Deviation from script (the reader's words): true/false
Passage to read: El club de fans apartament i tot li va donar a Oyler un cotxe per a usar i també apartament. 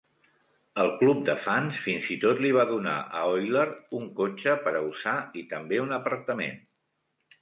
true